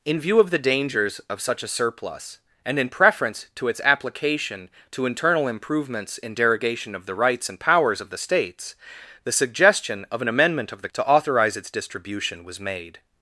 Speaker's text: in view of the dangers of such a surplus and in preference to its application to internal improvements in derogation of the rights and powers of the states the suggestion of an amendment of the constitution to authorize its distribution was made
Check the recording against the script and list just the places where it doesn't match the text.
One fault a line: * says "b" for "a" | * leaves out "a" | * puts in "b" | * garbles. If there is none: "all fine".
* leaves out "constitution"